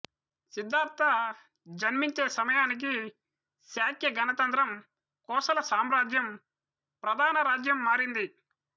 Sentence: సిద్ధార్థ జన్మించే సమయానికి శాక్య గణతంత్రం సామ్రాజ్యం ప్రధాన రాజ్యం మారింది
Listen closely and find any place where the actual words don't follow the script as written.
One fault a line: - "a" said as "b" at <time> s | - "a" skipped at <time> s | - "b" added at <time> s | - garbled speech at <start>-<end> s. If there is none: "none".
- "కోసల" added at 5.3 s